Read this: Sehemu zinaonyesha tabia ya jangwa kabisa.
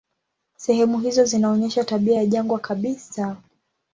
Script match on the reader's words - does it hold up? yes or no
no